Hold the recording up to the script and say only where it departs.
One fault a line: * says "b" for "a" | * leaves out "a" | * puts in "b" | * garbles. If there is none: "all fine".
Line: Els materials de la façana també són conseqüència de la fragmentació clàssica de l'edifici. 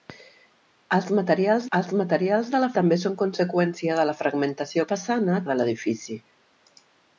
* puts in "els materials"
* leaves out "façana"
* says "façana" for "clàssica"